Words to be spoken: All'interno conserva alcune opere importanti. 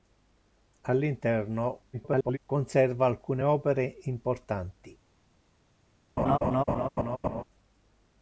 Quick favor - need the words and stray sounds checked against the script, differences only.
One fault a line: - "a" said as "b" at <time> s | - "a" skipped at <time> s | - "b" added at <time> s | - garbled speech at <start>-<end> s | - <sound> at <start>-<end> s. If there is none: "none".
- garbled speech at 1.9-2.4 s
- laugh at 6.2-7.4 s